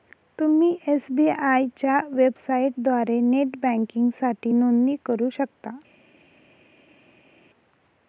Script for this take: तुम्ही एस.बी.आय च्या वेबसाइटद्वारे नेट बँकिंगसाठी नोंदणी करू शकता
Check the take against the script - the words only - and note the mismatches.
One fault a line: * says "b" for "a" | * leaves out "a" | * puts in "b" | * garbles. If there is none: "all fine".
all fine